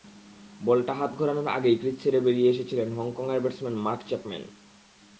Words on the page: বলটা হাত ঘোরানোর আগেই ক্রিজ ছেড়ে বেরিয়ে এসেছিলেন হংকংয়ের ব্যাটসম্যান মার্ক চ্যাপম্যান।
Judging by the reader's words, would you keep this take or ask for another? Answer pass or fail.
pass